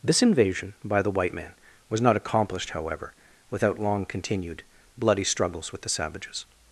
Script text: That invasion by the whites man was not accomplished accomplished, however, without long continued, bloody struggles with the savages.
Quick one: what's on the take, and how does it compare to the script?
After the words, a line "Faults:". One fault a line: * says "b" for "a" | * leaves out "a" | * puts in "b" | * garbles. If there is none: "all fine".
This invasion by the white man was not accomplished, however, without long continued, bloody struggles with the savages.
Faults:
* says "This" for "That"
* says "white" for "whites"
* leaves out "accomplished"